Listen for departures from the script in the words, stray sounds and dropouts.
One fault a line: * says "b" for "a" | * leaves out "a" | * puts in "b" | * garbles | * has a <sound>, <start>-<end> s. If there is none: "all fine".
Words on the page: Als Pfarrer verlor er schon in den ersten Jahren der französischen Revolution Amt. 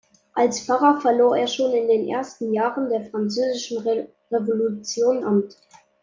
all fine